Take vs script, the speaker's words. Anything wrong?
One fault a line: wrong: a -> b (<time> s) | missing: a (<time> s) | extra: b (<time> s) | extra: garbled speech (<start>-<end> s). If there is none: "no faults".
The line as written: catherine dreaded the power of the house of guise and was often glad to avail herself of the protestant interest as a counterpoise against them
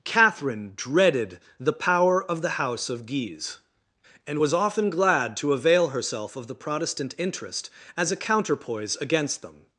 no faults